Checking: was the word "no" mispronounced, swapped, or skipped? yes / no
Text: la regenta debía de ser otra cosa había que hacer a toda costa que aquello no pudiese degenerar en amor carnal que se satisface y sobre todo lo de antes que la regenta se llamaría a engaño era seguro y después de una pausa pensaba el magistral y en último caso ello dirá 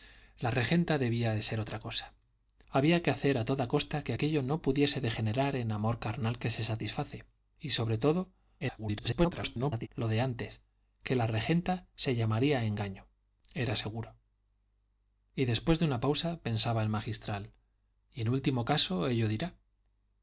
no